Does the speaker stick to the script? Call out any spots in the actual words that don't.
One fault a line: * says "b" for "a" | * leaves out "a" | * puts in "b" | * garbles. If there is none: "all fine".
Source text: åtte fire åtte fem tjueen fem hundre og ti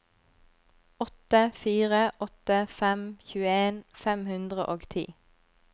all fine